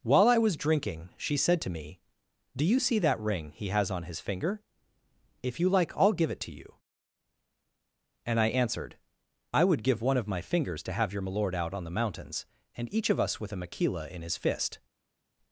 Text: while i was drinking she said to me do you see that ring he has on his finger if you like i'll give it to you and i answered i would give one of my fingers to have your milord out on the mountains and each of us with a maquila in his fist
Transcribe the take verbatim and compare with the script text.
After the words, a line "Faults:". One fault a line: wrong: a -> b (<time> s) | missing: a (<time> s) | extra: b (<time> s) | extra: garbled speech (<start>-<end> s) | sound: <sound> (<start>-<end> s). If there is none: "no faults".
while i was drinking she said to me do you see that ring he has on his finger if you like i'll give it to you and i answered i would give one of my fingers to have your milord out on the mountains and each of us with a maquila in his fist
Faults:
no faults